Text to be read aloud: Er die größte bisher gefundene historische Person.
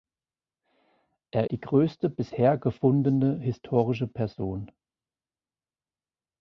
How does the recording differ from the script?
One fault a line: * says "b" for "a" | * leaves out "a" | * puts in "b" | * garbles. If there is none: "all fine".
all fine